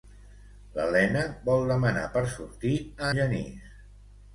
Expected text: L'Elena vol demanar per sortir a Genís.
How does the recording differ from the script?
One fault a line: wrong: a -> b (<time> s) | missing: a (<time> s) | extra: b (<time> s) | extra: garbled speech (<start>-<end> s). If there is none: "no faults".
no faults